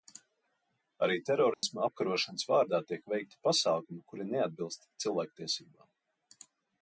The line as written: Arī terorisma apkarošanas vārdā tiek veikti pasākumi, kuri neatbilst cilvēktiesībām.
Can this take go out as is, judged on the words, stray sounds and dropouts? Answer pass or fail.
fail